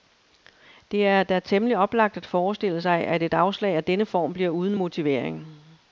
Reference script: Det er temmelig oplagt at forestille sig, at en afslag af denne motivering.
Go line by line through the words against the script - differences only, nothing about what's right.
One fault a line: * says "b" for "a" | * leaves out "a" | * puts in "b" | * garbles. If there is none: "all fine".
* puts in "da"
* says "et" for "en"
* puts in "form bliver uden"